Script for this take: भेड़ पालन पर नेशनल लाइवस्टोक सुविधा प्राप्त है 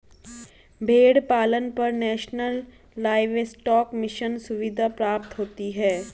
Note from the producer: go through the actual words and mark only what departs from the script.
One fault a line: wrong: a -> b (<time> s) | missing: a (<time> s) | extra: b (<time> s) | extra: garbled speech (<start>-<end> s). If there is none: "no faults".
extra: मिशन (3.9 s)
extra: होती (5.4 s)